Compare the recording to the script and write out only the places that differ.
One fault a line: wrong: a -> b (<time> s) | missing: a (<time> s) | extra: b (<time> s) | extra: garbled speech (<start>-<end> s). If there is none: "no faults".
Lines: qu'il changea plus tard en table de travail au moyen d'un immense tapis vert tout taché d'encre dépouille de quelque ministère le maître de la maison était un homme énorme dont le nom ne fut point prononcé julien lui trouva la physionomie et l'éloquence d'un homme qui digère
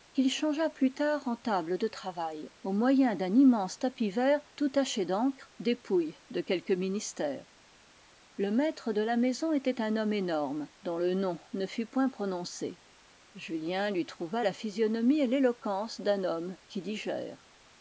no faults